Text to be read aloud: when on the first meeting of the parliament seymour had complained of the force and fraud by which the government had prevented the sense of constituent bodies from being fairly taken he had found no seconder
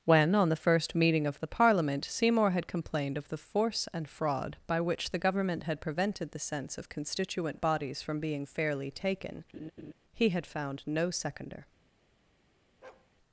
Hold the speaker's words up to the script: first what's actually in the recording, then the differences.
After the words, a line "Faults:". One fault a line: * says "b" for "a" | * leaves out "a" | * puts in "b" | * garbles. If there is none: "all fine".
when on the first meeting of the parliament seymour had complained of the force and fraud by which the government had prevented the sense of constituent bodies from being fairly taken he had found no seconder
Faults:
all fine